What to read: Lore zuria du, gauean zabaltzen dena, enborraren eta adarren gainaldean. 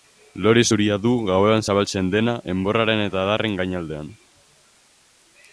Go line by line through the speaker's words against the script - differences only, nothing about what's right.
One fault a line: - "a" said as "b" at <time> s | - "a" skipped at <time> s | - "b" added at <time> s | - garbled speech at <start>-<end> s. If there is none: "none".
none